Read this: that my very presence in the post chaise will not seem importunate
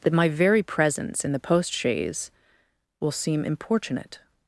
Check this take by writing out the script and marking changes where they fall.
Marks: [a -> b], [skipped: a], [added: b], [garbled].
that my very presence in the post chaise will [skipped: not] seem importunate